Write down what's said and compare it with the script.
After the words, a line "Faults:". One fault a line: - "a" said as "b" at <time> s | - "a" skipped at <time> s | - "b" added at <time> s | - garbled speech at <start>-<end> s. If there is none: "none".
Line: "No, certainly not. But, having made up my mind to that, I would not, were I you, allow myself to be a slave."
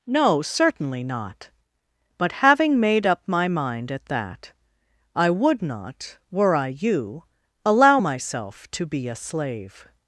"No, certainly not. But, having made up my mind at that, I would not, were I you, allow myself to be a slave."
Faults:
- "to" said as "at" at 3.9 s